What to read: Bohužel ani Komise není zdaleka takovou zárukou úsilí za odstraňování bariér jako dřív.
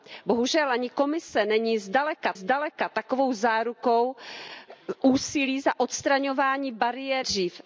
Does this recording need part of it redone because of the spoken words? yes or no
yes